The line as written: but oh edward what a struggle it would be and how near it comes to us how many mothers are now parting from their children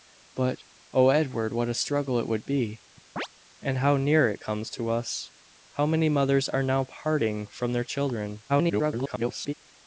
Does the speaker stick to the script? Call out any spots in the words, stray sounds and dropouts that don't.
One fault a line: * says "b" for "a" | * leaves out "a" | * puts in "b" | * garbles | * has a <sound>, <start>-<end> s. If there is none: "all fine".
* has a chirp, 3.2-3.3 s
* garbles